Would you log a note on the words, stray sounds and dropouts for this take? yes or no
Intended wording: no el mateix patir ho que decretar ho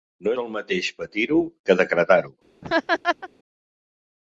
yes